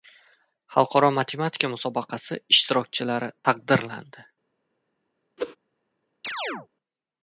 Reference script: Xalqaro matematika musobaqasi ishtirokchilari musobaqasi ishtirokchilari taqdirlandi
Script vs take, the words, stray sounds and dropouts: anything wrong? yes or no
yes